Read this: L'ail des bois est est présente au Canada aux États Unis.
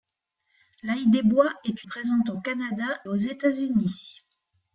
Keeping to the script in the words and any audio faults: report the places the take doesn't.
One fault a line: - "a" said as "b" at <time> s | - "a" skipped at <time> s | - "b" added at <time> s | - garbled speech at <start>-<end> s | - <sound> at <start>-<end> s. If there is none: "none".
none